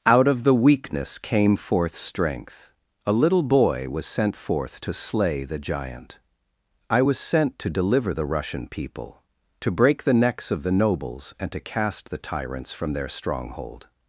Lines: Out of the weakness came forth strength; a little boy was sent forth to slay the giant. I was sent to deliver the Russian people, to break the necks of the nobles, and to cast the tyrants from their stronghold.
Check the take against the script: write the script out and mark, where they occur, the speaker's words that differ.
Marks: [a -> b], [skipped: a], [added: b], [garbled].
Out of the weakness came forth strength; a little boy was sent forth to slay the giant. I was sent to deliver the Russian people, to break the necks of the nobles, and to cast the tyrants from their stronghold.